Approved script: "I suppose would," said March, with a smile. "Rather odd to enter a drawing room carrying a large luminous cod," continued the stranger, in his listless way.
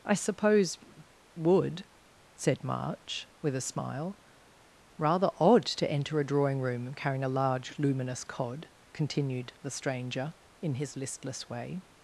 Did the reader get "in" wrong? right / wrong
right